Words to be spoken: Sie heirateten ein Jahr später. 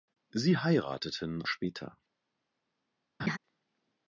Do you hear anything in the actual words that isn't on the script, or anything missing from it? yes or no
yes